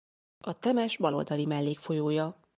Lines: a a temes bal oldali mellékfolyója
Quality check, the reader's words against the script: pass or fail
fail